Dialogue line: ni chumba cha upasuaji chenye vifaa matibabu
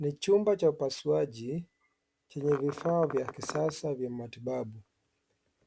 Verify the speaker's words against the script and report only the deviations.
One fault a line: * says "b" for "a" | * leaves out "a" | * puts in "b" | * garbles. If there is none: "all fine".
* puts in "vya kisasa vya"